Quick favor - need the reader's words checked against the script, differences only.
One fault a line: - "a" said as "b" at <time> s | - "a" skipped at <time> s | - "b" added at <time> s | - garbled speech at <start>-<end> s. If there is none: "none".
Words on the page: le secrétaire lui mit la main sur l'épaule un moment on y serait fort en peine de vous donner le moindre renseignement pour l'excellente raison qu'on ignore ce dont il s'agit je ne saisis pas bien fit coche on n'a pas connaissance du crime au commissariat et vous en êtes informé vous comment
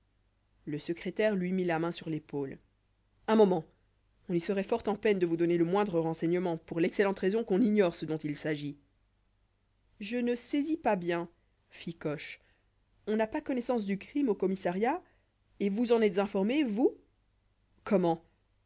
none